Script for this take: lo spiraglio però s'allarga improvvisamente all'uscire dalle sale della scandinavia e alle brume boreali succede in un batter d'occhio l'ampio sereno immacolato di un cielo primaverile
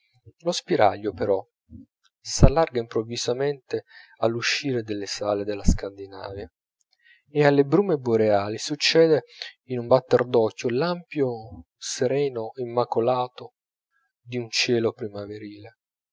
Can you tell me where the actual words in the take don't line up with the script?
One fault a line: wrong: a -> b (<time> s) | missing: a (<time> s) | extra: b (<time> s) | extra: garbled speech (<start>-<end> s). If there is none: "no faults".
no faults